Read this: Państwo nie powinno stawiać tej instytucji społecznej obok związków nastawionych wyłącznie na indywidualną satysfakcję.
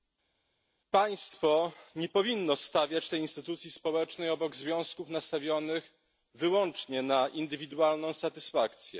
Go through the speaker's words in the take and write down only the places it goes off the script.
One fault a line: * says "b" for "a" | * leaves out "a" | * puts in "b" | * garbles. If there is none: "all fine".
all fine